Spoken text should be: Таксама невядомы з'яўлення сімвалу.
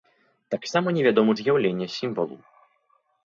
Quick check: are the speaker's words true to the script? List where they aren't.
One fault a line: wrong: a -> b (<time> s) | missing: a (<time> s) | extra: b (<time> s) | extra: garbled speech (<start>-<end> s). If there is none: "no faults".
no faults